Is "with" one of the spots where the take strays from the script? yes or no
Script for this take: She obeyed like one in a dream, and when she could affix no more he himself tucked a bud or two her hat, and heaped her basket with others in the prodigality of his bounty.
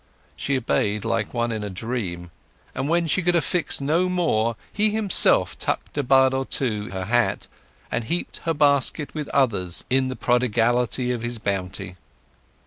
no